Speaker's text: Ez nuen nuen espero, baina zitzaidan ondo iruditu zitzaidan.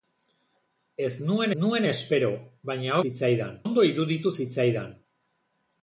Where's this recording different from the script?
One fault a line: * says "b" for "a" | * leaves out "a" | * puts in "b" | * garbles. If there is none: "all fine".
all fine